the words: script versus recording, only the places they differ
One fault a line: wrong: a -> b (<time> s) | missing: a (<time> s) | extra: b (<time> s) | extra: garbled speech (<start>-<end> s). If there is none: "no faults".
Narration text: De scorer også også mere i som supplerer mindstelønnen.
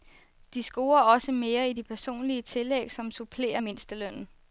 missing: også (1.3 s)
extra: de personlige tillæg (1.7 s)